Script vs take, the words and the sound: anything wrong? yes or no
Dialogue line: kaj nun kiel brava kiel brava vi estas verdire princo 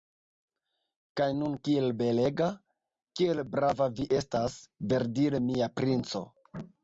yes